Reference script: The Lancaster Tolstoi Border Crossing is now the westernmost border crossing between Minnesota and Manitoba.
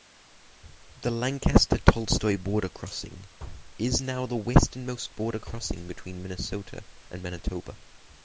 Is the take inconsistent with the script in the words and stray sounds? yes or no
no